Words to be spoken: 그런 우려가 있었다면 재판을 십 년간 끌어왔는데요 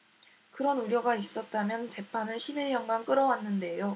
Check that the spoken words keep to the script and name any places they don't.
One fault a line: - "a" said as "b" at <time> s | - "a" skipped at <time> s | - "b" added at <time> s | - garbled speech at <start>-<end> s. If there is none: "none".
- "일" added at 2.6 s